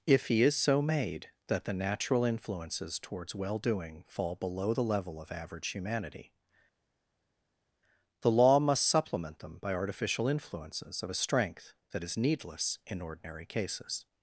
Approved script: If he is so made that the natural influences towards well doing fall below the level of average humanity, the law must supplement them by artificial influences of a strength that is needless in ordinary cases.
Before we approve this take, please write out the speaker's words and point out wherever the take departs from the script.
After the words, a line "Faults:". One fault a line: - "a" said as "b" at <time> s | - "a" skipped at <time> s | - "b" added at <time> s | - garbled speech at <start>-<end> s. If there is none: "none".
If he is so made that the natural influences towards well doing fall below the level of average humanity, the law must supplement them by artificial influences of a strength that is needless in ordinary cases.
Faults:
none